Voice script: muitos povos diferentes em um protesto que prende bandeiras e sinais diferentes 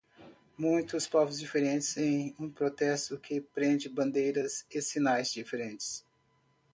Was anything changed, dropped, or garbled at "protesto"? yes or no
no